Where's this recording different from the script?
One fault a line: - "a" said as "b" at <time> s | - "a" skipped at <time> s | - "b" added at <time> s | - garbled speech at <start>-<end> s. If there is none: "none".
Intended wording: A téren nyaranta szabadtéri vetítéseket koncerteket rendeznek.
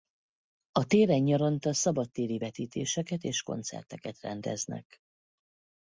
- "és" added at 3.2 s